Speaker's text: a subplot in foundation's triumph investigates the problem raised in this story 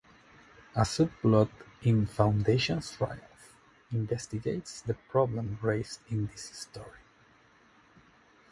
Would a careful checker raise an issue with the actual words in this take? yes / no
no